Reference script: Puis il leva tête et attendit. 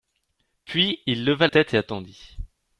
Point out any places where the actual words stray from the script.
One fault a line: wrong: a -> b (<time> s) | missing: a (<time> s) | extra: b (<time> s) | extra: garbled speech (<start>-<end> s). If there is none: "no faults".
no faults